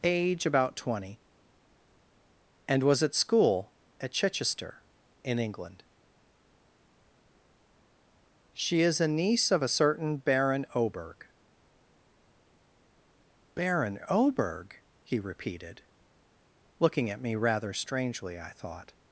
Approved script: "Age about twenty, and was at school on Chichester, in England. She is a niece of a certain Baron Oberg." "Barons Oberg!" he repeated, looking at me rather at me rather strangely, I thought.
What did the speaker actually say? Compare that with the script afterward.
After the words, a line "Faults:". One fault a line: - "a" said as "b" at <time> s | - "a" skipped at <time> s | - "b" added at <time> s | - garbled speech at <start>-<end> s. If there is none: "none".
"Age about twenty, and was at school at Chichester, in England. She is a niece of a certain Baron Oberg." "Baron Oberg!" he repeated, looking at me rather strangely, I thought.
Faults:
- "on" said as "at" at 4.0 s
- "Barons" said as "Baron" at 13.6 s
- "at me rather" skipped at 17.7 s